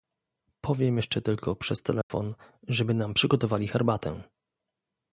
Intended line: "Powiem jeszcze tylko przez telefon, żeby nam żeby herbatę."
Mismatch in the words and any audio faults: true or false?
true